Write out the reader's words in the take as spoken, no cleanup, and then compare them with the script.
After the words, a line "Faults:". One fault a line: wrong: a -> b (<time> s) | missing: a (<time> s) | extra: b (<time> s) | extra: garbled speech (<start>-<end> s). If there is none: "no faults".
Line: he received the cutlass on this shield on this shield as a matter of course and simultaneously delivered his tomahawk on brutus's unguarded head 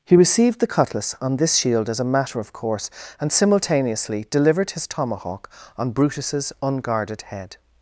he received the cutlass on this shield as a matter of course and simultaneously delivered his tomahawk on brutus's unguarded head
Faults:
missing: on this shield (1.9 s)